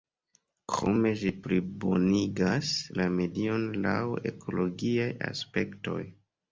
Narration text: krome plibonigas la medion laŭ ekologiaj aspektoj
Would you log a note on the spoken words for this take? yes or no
yes